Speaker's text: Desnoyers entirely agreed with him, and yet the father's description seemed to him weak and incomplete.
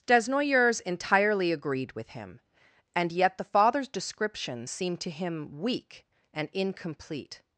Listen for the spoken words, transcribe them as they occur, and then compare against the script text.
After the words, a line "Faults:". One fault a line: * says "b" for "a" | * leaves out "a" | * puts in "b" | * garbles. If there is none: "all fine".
Desnoyers entirely agreed with him, and yet the father's description seemed to him weak and incomplete.
Faults:
all fine